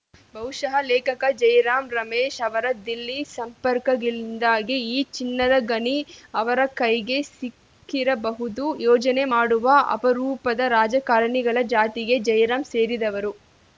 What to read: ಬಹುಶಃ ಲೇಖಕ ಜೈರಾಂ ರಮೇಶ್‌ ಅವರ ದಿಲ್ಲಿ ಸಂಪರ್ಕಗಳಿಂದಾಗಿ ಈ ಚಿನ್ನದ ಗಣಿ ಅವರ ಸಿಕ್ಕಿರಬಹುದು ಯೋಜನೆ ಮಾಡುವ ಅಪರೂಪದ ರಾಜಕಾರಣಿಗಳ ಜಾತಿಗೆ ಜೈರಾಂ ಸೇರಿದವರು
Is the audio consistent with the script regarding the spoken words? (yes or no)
no